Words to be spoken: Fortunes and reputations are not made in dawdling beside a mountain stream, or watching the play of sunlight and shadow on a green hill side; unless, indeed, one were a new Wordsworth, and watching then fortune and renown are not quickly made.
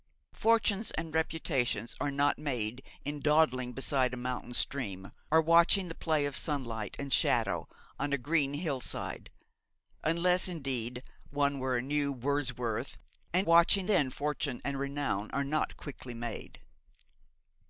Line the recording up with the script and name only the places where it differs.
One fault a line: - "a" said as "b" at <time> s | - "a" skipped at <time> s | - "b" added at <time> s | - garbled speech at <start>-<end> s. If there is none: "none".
none